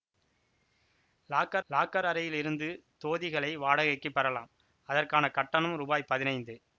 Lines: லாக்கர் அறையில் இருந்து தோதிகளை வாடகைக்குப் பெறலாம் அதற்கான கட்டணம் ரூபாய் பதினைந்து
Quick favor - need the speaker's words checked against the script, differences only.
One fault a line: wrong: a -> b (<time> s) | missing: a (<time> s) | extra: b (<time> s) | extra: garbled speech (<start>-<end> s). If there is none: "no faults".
extra: லாக்கர் (1.7 s)